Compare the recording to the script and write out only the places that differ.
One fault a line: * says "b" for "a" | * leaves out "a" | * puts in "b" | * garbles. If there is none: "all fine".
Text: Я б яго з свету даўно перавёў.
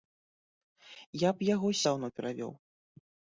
* leaves out "свету"